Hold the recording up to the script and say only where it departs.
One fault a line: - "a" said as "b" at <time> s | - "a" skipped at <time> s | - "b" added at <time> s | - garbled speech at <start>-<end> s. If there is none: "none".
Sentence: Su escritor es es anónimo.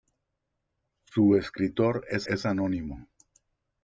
none